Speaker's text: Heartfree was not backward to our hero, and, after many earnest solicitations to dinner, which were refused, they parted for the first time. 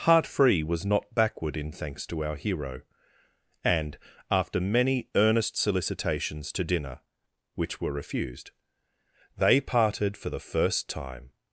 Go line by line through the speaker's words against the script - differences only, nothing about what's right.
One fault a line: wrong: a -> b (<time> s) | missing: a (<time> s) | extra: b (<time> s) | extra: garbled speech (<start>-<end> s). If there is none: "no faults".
extra: in thanks (1.6 s)